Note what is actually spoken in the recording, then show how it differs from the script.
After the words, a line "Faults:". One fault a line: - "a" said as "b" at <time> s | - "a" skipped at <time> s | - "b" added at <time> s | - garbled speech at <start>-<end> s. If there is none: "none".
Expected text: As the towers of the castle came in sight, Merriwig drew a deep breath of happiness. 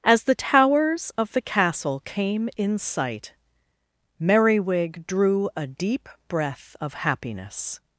As the towers of the castle came in sight, Merriwig drew a deep breath of happiness.
Faults:
none